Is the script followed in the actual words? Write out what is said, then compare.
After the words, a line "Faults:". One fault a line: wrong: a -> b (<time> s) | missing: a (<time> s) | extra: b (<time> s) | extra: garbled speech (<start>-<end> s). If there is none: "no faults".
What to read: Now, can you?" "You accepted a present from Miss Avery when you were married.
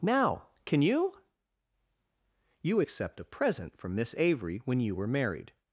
Now, can you?" "You accept a present from Miss Avery when you were married.
Faults:
wrong: accepted -> accept (2.8 s)